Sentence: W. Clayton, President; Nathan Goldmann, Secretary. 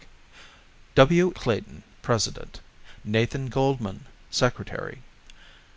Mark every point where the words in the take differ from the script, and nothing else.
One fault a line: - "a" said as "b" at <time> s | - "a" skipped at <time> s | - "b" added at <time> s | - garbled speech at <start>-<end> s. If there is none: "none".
none